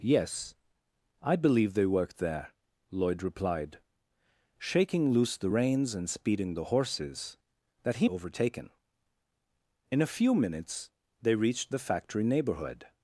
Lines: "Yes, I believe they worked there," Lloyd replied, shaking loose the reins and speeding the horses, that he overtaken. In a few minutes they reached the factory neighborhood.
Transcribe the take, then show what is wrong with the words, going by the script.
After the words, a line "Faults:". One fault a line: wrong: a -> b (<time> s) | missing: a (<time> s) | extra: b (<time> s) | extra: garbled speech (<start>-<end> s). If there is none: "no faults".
"Yes, I believe they worked there," Lloyd replied, shaking loose the reins and speeding the horses, that he overtaken. In a few minutes they reached the factory neighborhood.
Faults:
no faults